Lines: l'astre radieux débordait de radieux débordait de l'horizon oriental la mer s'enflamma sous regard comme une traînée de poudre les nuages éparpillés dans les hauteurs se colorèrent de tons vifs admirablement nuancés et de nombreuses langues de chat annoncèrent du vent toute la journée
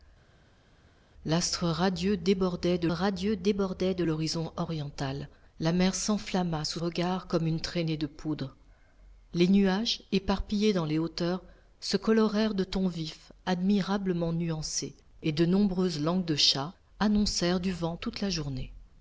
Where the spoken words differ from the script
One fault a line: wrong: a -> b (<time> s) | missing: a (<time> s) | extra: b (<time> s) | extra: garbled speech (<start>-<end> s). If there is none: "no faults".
no faults